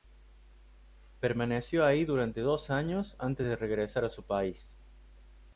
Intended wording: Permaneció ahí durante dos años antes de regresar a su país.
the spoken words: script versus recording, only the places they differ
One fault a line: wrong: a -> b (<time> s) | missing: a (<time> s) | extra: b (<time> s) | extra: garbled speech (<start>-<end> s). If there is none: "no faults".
no faults